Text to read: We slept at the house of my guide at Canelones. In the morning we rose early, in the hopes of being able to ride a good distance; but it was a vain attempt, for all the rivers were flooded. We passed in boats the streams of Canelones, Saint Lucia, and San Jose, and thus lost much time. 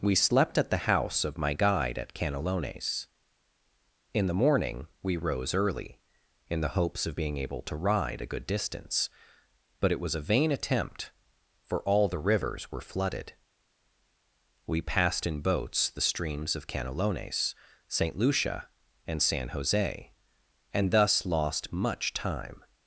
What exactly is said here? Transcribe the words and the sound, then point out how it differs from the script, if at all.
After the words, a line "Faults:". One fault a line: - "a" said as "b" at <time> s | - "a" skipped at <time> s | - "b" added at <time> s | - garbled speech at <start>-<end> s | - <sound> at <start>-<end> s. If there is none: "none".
We slept at the house of my guide at Canelones. In the morning we rose early, in the hopes of being able to ride a good distance; but it was a vain attempt, for all the rivers were flooded. We passed in boats the streams of Canelones, Saint Lucia, and San Jose, and thus lost much time.
Faults:
none